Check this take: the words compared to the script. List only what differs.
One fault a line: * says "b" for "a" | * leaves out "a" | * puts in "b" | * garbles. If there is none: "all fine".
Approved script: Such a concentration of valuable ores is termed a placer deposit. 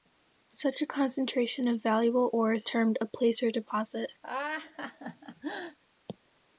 * leaves out "is"